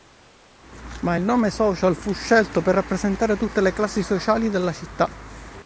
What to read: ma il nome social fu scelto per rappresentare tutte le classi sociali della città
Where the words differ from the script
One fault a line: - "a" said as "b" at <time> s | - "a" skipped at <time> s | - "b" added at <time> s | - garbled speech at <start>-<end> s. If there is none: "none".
none